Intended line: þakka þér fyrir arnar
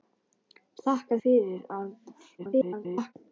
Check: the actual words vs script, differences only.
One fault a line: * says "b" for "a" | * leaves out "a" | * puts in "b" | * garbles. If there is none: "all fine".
* leaves out "þér"
* garbles